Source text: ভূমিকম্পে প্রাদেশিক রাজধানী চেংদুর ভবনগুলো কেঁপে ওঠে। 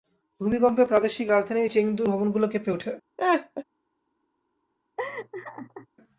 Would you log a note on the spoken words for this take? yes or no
no